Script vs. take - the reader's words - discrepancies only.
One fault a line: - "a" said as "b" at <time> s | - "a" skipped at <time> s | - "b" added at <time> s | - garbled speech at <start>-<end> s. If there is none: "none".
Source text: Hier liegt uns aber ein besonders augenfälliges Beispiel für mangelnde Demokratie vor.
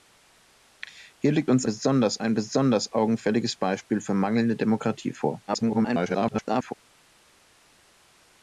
- "aber" said as "besonders" at 1.6 s
- garbled speech at 5.5-6.7 s